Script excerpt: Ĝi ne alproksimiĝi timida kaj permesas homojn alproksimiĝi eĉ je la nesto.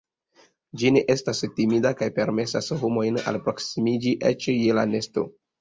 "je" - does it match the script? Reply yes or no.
yes